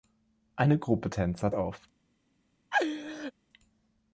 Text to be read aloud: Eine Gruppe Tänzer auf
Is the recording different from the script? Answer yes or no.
no